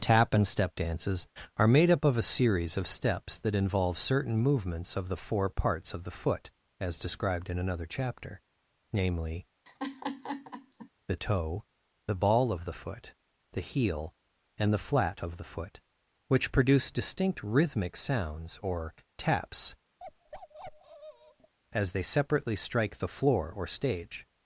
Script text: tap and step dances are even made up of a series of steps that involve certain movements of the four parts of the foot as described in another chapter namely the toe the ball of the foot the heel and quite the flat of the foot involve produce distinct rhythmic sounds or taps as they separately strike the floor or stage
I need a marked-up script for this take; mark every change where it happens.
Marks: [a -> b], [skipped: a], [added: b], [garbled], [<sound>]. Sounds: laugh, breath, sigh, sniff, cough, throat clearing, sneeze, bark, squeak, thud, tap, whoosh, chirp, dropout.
tap and step dances are [skipped: even] made up of a series of steps that involve certain movements of the four parts of the foot as described in another chapter namely [laugh] the toe the ball of the foot the heel and [skipped: quite] the flat of the foot [involve -> which] produce distinct rhythmic sounds or taps [bark] as they separately strike the floor or stage